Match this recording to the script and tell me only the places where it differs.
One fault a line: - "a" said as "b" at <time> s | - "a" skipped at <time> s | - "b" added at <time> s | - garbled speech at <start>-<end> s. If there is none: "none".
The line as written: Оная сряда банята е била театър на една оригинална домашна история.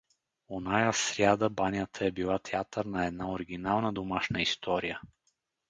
none